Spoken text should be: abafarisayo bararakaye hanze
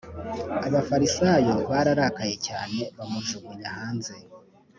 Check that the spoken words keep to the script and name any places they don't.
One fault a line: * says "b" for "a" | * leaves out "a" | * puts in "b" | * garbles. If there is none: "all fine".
* puts in "cyane bamujugunya"